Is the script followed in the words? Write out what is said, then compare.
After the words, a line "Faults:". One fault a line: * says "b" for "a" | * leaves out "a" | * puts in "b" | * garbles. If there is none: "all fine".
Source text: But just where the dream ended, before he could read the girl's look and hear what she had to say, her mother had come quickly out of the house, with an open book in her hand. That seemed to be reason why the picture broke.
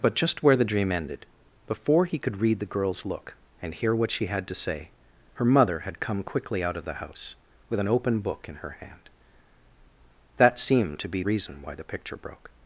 But just where the dream ended, before he could read the girl's look and hear what she had to say, her mother had come quickly out of the house, with an open book in her hand. That seemed to be reason why the picture broke.
Faults:
all fine